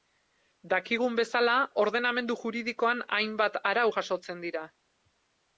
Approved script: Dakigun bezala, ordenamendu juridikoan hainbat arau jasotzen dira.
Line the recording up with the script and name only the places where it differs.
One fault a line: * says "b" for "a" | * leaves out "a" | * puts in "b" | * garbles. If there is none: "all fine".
all fine